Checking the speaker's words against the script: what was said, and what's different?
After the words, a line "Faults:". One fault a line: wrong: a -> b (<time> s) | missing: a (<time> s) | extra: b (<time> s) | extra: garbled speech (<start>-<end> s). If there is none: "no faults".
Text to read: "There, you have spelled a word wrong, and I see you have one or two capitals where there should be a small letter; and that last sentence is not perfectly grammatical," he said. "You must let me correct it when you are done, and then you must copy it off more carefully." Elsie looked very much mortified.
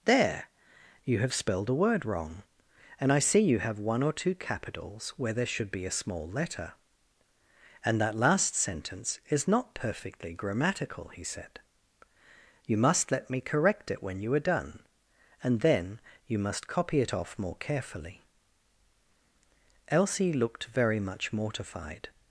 "There, you have spelled a word wrong, and I see you have one or two capitals where there should be a small letter; and that last sentence is not perfectly grammatical," he said. "You must let me correct it when you are done, and then you must copy it off more carefully." Elsie looked very much mortified.
Faults:
no faults